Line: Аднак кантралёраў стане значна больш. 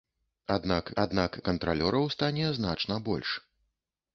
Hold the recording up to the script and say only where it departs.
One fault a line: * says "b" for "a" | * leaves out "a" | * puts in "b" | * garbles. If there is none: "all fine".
* puts in "аднак"